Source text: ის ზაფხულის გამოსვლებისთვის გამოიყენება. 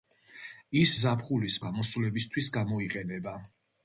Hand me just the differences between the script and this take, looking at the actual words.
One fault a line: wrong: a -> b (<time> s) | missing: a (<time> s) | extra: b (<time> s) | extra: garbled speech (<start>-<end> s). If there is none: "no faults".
no faults